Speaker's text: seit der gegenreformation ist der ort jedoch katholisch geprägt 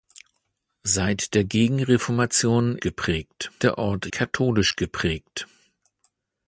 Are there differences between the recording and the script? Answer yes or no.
yes